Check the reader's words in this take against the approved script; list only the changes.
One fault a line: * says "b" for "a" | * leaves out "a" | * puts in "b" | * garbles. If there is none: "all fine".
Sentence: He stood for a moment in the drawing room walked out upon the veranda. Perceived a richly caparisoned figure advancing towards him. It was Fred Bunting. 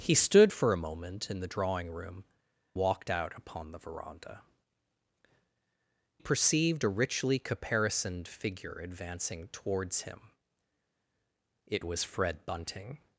all fine